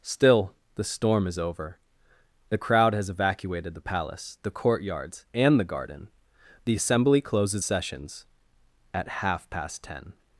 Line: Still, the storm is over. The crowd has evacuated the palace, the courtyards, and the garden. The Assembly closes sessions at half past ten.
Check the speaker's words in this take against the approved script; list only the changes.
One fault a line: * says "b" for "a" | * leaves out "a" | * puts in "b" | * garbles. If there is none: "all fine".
all fine